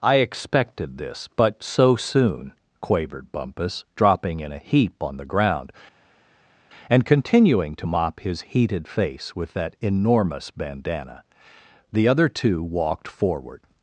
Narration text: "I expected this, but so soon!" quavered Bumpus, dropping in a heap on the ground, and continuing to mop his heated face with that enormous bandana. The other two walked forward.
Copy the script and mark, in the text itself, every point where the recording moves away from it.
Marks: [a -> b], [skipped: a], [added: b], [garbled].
"I expected this, but so soon!" quavered Bumpus, dropping in a heap on the ground, and continuing to mop his heated face with that enormous bandana. The other two walked forward.